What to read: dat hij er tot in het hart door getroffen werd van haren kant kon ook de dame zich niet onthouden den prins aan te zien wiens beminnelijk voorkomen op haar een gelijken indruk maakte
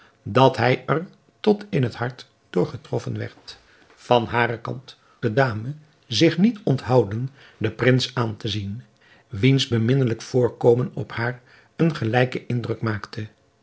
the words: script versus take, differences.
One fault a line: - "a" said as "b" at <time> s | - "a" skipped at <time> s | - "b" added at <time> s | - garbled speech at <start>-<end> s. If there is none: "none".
- "kon ook" skipped at 5.0 s